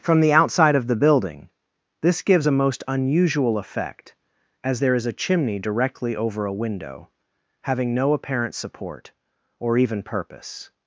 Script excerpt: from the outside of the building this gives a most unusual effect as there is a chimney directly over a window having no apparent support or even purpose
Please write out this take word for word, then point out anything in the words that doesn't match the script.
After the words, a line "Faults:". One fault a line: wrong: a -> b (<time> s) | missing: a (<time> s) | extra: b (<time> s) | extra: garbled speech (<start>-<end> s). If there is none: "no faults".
from the outside of the building this gives a most unusual effect as there is a chimney directly over a window having no apparent support or even purpose
Faults:
no faults